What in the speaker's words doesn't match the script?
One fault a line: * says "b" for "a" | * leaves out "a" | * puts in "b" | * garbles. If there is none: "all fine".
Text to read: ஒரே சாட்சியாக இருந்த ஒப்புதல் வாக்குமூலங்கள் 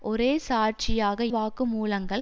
* leaves out "இருந்த ஒப்புதல்"